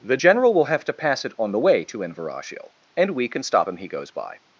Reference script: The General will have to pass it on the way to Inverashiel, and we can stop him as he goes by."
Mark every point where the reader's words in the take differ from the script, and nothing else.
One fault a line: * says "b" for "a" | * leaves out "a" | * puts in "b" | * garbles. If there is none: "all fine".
* leaves out "as"